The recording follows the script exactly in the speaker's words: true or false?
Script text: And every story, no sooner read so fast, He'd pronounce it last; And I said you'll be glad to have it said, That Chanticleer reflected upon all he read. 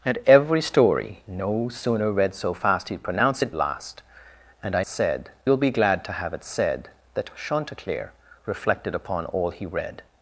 true